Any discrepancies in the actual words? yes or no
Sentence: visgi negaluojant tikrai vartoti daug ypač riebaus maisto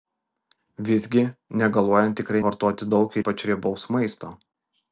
no